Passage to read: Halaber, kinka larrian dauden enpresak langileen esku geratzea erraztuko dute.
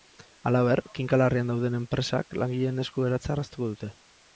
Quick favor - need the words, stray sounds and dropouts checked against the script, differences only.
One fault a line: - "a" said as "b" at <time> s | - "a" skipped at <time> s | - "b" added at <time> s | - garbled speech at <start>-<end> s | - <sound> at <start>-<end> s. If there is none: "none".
none